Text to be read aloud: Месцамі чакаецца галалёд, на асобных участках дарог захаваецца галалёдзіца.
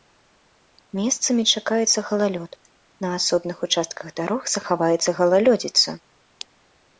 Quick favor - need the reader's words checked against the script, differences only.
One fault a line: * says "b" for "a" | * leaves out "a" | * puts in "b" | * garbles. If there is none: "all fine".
all fine